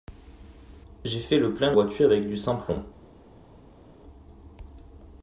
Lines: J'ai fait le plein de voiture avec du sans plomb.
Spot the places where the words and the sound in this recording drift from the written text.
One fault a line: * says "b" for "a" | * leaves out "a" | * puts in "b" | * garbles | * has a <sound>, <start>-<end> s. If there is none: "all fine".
all fine